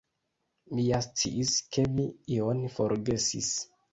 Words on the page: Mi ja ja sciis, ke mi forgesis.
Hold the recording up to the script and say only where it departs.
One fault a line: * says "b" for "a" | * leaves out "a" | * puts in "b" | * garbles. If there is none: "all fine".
* leaves out "ja"
* puts in "ion"